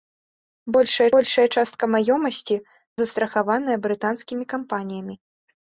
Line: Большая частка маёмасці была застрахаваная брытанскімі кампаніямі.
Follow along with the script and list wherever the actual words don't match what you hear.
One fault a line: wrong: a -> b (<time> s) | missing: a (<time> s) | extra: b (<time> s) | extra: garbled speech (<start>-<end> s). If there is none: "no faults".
extra: большая (1.2 s)
missing: была (2.6 s)